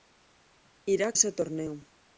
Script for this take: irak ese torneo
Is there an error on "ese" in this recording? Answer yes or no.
no